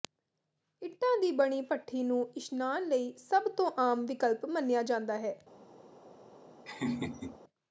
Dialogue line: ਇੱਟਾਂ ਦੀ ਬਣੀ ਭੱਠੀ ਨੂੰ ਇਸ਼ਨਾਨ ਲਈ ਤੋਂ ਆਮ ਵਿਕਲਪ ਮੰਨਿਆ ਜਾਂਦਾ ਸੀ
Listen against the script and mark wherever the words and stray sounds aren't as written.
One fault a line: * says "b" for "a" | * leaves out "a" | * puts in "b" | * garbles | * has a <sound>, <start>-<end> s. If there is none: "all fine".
* puts in "ਸਭ"
* says "ਹੈ" for "ਸੀ"
* has a laugh, 6.7-7.4 s